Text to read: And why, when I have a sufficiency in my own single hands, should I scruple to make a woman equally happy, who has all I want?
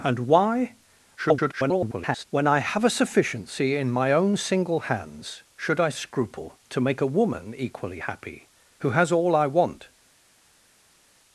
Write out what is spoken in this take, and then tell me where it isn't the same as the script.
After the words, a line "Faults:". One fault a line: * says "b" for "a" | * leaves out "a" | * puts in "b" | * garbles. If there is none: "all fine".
And why, [garbled] when I have a sufficiency in my own single hands, should I scruple to make a woman equally happy, who has all I want?
Faults:
* garbles